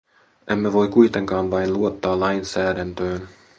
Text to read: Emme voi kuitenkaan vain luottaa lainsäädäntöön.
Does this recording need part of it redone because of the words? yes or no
no